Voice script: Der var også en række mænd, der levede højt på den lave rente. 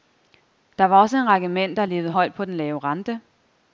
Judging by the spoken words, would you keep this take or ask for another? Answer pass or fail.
pass